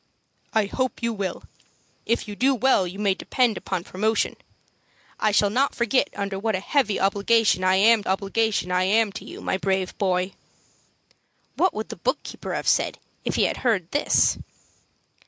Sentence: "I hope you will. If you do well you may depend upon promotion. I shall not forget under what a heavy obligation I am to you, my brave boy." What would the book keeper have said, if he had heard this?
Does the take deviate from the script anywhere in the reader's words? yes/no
yes